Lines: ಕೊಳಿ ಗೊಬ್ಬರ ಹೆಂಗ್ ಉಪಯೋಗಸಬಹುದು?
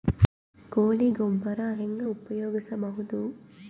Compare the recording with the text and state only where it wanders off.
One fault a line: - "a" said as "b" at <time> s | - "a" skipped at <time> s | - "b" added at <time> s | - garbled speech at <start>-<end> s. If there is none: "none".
none